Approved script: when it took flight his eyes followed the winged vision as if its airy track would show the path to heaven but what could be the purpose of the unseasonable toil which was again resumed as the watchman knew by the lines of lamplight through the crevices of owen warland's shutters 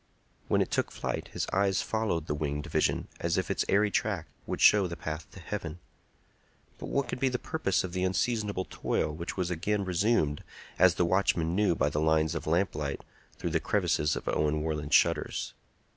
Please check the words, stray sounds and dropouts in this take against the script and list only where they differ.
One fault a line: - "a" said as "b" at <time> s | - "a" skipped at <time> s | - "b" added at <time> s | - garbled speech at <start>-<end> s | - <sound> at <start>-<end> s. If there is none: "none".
none